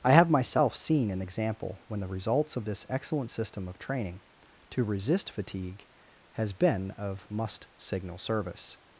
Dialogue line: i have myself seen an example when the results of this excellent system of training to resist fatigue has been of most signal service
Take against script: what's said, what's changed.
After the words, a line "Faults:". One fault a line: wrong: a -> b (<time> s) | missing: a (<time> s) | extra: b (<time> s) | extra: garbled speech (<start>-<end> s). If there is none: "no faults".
i have myself seen an example when the results of this excellent system of training to resist fatigue has been of must signal service
Faults:
wrong: most -> must (7.3 s)